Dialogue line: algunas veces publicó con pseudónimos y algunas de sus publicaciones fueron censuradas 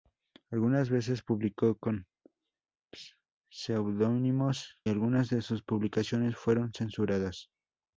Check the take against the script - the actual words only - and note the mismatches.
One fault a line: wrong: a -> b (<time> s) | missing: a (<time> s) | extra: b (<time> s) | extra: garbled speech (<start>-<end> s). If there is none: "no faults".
missing: y (4.8 s)